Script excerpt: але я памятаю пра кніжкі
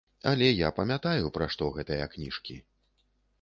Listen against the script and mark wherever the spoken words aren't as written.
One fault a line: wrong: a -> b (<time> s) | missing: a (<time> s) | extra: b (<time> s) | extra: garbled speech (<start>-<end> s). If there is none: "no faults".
extra: што гэтыя (1.6 s)